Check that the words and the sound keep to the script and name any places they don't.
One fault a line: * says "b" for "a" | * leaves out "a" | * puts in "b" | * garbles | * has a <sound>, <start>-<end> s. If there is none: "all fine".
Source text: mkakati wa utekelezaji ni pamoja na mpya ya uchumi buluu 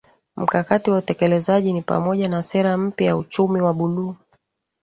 * puts in "sera"
* puts in "wa"